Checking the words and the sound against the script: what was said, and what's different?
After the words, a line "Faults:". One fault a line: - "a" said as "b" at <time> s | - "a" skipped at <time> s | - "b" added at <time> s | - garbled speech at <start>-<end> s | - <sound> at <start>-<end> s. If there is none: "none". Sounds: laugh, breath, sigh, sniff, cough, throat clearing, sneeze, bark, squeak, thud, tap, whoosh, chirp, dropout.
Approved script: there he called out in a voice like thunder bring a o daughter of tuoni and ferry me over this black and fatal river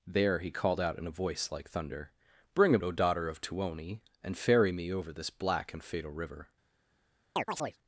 there he called out in a voice like thunder bring a o daughter of tuoni and ferry me over this black and fatal river
Faults:
- chirp at 7.4-7.8 s